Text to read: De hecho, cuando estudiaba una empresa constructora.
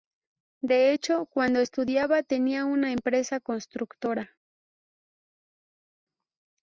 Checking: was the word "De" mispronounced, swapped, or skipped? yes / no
no